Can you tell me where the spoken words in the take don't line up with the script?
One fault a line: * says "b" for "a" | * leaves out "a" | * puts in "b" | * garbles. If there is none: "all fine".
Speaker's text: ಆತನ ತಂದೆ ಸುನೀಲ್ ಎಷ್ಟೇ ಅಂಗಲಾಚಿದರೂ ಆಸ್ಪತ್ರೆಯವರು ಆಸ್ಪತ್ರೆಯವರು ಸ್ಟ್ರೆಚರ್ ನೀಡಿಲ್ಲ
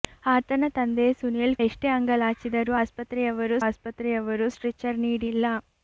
all fine